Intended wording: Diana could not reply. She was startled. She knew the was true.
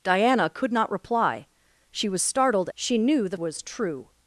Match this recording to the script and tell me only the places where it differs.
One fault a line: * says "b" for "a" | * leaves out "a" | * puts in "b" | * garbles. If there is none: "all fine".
all fine